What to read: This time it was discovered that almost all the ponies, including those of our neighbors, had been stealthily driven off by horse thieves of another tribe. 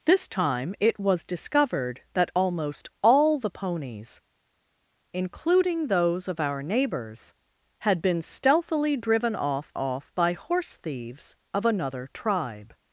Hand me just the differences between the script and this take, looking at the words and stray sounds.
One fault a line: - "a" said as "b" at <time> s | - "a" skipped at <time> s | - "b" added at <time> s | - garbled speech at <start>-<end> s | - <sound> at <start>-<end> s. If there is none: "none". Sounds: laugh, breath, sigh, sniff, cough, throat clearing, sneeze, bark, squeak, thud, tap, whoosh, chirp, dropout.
- "off" added at 9.7 s